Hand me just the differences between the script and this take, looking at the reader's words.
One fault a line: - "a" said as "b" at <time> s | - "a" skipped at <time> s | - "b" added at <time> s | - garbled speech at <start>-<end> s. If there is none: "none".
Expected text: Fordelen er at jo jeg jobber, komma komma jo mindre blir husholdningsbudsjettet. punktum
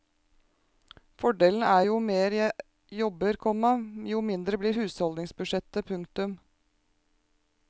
- "mer" added at 2.0 s
- "komma" skipped at 3.7 s